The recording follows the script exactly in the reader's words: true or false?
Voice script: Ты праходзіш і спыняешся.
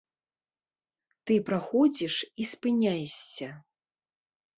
true